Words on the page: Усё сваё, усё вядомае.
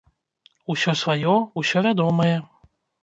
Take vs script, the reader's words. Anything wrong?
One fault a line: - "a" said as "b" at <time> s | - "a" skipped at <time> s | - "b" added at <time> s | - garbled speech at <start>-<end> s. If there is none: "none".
none